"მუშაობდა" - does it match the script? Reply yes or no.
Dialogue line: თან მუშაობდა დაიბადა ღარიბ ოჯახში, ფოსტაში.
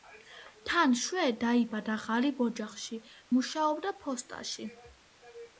no